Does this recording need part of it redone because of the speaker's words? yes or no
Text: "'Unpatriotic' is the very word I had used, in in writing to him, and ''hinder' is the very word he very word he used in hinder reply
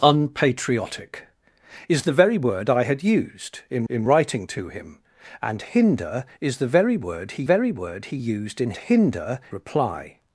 no